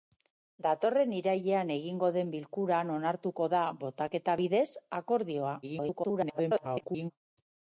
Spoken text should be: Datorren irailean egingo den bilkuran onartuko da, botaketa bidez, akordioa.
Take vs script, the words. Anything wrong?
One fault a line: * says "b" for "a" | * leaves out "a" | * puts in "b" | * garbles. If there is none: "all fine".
* garbles